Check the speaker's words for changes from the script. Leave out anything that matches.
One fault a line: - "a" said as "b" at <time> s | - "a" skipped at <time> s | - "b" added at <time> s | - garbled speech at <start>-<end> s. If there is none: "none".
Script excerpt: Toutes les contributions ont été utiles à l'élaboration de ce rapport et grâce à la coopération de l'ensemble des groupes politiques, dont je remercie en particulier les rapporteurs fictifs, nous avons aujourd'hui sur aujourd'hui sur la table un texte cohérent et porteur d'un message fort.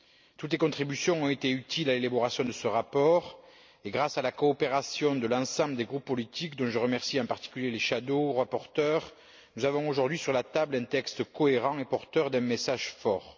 - "aujourd'hui sur" skipped at 10.3 s